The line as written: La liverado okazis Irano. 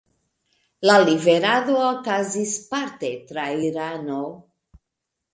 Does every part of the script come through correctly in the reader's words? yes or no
no